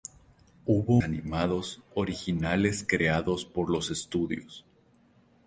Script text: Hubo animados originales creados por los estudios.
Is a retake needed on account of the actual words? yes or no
no